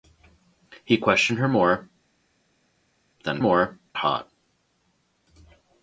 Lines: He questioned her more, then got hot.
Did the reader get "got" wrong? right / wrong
wrong